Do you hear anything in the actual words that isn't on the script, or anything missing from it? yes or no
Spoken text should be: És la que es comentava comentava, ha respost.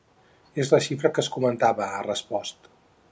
yes